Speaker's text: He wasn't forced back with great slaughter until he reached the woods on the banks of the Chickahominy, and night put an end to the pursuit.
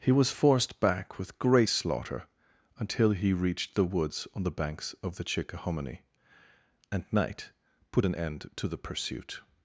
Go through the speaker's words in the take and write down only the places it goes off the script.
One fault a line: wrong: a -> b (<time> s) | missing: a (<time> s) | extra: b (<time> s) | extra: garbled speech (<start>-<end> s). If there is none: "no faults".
wrong: wasn't -> was (0.1 s)